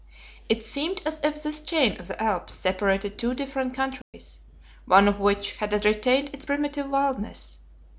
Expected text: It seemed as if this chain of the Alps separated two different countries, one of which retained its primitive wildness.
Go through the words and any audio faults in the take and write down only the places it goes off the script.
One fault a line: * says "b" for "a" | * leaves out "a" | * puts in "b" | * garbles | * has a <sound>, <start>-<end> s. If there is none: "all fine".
* has a dropout, 4.0-4.1 s
* puts in "had"